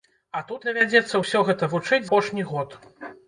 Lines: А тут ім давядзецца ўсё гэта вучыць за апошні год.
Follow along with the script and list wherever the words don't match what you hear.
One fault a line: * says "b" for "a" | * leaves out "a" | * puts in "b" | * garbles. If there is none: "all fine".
* leaves out "ім"
* leaves out "за"